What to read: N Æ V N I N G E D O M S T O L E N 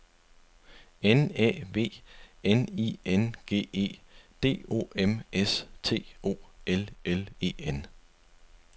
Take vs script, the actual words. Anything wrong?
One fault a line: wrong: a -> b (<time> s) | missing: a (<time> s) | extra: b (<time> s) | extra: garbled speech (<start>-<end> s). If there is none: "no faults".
extra: L (7.0 s)